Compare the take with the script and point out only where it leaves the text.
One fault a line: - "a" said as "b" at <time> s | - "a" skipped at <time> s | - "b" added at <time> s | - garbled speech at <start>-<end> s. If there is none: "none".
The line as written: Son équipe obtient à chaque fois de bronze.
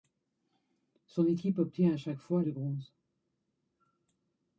none